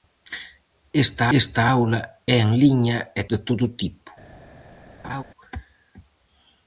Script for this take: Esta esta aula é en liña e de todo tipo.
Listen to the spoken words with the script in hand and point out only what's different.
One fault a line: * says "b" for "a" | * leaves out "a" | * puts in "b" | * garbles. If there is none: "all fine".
all fine